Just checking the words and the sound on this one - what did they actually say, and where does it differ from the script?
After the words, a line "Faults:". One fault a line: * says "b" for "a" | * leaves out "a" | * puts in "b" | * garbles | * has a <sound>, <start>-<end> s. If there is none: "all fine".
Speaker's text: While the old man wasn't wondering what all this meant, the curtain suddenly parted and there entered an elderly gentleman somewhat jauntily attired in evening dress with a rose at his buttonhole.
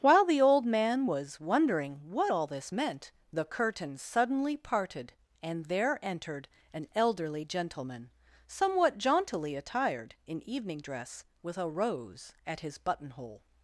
While the old man was wondering what all this meant, the curtain suddenly parted and there entered an elderly gentleman somewhat jauntily attired in evening dress with a rose at his buttonhole.
Faults:
* says "was" for "wasn't"